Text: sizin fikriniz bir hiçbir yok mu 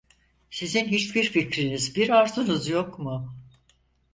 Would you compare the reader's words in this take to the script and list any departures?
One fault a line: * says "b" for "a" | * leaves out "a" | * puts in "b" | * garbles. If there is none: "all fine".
* puts in "hiçbir"
* says "arzunuz" for "hiçbir"